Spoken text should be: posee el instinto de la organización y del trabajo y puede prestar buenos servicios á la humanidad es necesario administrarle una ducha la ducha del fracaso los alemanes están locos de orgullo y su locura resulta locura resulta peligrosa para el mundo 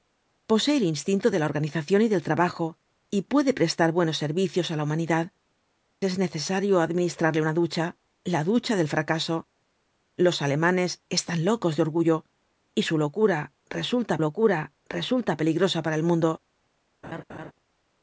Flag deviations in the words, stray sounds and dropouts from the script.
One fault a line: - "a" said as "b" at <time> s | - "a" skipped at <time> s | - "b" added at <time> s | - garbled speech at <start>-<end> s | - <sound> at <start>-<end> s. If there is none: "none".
- laugh at 17.0-17.5 s